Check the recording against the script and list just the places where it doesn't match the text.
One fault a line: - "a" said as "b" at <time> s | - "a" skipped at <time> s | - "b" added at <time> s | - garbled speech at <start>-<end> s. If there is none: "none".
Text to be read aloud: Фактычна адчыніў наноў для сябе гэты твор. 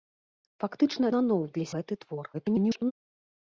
- "адчыніў" skipped at 1.1 s
- "сябе" skipped at 1.7 s
- garbled speech at 2.3-2.9 s